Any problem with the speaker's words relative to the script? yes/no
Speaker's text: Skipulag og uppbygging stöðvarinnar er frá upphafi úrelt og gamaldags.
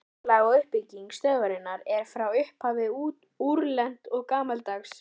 no